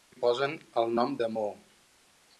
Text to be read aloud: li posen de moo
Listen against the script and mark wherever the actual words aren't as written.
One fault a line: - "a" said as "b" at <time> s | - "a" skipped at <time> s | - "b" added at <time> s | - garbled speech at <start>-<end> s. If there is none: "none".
- "el nom" added at 0.8 s